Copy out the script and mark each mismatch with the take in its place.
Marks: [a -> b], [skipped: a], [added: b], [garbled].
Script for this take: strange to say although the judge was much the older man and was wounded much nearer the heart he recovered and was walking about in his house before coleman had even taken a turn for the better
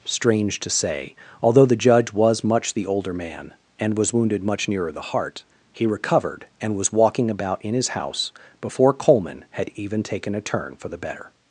strange to say although the judge was much the older man and was wounded much nearer the heart he recovered and was walking about in his house before coleman had even taken a turn for the better